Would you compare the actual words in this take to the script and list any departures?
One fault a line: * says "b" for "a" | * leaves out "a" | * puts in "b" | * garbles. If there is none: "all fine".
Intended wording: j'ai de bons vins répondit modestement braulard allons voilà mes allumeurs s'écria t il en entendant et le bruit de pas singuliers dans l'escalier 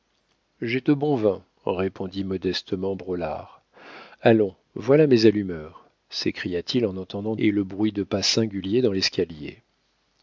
all fine